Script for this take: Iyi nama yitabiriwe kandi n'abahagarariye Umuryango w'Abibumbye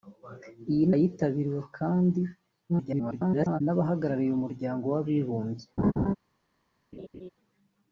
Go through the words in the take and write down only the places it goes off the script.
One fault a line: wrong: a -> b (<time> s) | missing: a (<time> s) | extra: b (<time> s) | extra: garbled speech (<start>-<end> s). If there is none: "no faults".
missing: nama (0.8 s)
extra: garbled speech (2.7-3.6 s)